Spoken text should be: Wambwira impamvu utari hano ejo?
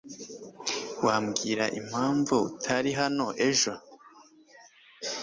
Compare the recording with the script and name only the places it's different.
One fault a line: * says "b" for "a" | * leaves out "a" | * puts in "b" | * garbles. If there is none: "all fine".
all fine